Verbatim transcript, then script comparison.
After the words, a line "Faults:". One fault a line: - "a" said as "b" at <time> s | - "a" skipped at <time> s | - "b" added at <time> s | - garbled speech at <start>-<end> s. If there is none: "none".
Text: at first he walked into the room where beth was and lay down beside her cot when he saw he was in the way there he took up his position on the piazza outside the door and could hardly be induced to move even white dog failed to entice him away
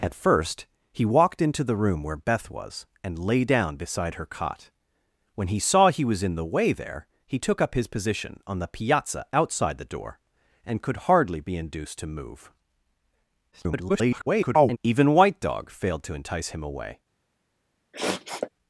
at first he walked into the room where beth was and lay down beside her cot when he saw he was in the way there he took up his position on the piazza outside the door and could hardly be induced to move [garbled] even white dog failed to entice him away
Faults:
- garbled speech at 13.5-14.8 s